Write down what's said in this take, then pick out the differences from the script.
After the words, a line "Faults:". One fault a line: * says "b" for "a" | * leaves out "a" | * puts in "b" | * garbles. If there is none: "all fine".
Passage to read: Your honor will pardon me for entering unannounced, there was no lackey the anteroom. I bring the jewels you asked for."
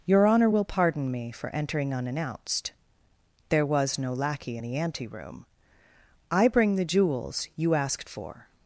Your honor will pardon me for entering unannounced, there was no lackey the anteroom. I bring the jewels you asked for."
Faults:
all fine